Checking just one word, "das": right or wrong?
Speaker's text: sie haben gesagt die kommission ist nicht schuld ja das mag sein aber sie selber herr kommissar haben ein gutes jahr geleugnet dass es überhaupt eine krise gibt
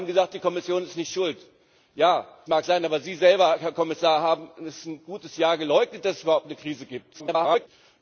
wrong